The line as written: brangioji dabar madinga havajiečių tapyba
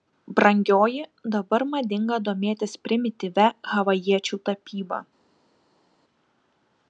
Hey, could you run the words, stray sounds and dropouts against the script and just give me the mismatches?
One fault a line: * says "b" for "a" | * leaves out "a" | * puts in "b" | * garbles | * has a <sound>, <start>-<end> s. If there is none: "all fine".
* puts in "domėtis primityvia"